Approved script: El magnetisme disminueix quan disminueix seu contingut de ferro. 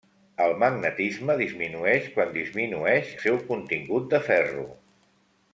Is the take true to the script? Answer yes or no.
yes